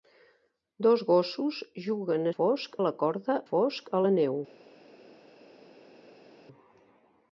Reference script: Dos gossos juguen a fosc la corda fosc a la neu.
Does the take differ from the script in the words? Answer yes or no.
no